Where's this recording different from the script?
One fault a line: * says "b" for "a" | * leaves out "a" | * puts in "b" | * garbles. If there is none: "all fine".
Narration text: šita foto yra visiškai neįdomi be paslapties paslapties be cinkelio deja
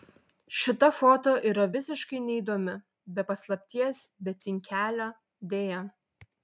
* leaves out "paslapties"